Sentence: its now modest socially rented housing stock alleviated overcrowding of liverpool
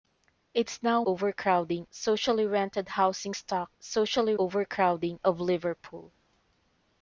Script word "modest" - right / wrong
wrong